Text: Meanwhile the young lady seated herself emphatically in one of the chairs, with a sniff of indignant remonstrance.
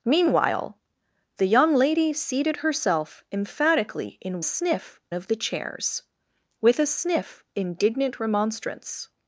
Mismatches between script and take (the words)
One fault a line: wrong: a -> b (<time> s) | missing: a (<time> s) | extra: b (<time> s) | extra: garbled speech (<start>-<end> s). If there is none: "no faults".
wrong: one -> sniff (4.4 s)
missing: of (7.4 s)